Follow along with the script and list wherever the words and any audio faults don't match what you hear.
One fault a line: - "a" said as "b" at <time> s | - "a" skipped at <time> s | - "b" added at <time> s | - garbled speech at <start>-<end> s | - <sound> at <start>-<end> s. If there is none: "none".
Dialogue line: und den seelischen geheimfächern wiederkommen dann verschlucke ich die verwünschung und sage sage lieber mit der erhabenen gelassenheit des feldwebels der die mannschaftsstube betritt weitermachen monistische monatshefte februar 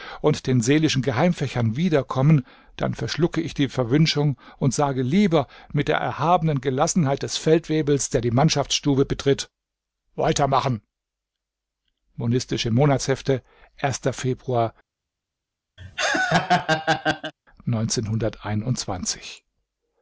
- "sage" skipped at 5.0 s
- laugh at 15.8-17.3 s